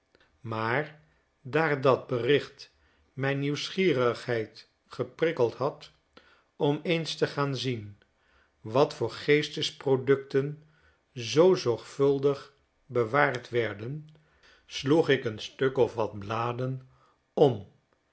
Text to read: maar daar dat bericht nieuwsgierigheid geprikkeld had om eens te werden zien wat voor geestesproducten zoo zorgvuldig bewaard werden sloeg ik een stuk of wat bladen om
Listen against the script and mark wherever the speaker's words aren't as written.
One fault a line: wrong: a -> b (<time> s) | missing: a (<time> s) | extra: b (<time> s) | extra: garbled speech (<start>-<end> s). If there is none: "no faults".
extra: mijn (3.1 s)
wrong: werden -> gaan (7.3 s)